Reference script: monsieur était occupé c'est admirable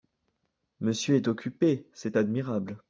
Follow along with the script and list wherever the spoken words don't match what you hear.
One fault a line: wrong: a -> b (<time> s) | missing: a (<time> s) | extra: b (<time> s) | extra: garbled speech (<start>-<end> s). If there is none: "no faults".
wrong: était -> est (1.1 s)